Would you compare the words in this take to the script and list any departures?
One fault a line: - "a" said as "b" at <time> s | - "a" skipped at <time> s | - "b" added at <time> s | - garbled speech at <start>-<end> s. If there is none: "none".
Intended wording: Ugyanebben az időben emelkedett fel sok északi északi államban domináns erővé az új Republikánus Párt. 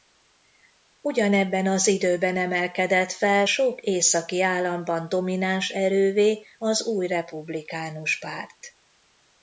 - "északi" skipped at 4.4 s